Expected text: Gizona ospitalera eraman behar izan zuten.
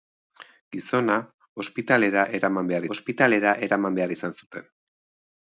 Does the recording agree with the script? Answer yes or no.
no